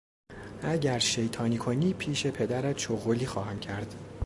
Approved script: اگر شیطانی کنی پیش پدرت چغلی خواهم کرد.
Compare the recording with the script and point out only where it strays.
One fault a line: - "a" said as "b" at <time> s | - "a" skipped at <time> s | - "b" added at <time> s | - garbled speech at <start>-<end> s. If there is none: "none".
none